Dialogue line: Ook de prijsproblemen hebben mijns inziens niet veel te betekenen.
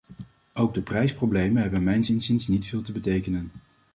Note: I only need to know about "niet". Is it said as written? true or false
true